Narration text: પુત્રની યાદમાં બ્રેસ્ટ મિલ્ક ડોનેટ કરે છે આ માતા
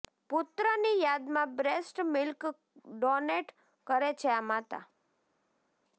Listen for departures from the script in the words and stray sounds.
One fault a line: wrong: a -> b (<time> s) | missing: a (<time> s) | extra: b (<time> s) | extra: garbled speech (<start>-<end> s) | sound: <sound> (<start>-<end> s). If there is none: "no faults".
no faults